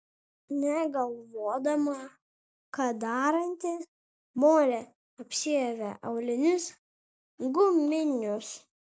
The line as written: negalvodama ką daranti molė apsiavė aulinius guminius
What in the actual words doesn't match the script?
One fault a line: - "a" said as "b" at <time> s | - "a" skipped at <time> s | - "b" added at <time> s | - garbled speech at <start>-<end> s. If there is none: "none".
none